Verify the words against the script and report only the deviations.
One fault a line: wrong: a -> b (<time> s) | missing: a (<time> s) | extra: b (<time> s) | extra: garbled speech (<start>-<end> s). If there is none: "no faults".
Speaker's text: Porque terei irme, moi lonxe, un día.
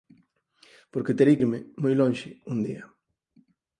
no faults